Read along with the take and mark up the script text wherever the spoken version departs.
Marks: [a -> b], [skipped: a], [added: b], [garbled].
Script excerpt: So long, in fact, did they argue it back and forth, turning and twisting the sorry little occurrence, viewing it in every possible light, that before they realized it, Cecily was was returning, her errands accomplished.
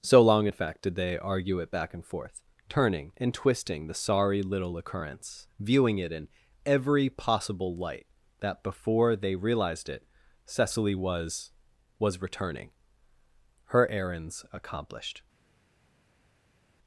So long, in fact, did they argue it back and forth, turning and twisting the sorry little occurrence, viewing it in every possible light, that before they realized it, Cecily was was returning, her errands accomplished.